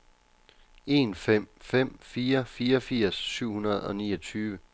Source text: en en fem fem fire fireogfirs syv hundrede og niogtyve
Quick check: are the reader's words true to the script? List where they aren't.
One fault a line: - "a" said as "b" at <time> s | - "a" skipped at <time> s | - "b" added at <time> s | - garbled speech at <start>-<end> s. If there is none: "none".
- "en" skipped at 1.1 s